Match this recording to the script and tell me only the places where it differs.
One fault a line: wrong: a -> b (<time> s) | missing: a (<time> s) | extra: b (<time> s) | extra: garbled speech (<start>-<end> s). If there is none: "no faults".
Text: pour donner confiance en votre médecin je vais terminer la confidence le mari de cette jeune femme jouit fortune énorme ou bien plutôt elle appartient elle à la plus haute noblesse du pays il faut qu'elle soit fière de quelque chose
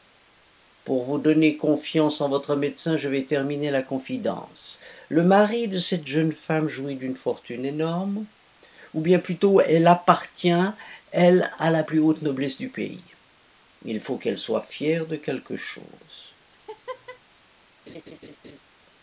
extra: vous (1.1 s)
extra: d'une (7.0 s)